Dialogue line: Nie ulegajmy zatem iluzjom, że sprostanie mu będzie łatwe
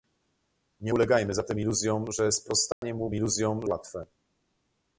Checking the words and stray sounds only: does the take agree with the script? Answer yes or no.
no